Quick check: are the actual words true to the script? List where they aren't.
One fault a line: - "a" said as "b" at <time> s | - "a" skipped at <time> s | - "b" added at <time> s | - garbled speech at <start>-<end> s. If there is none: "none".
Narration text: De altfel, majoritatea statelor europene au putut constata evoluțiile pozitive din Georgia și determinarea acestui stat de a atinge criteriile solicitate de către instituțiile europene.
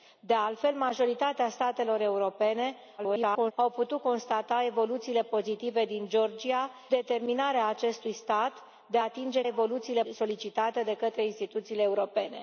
- garbled speech at 3.0-3.5 s
- "și" skipped at 6.7 s
- "criteriile" said as "evoluțiile" at 9.5 s